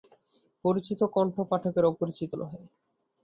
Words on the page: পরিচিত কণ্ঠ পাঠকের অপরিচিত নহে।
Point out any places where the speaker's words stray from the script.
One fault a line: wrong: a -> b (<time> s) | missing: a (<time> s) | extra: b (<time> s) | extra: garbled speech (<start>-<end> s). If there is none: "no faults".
no faults